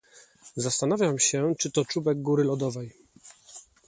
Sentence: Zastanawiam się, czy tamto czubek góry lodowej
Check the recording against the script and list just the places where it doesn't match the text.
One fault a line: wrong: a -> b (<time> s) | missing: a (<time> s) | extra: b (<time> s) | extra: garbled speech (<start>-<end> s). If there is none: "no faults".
wrong: tamto -> to (1.7 s)